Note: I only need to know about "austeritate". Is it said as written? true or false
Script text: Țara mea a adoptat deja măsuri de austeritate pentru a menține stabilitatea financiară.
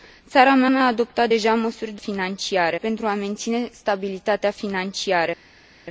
false